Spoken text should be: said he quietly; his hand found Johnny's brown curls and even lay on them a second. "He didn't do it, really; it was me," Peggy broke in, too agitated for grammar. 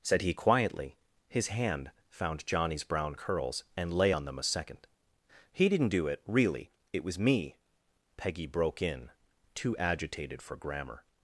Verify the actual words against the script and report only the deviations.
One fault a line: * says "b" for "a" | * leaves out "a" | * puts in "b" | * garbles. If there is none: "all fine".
* leaves out "even"